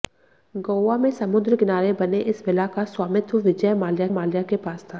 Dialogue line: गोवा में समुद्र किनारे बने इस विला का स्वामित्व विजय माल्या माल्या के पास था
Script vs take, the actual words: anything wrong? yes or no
no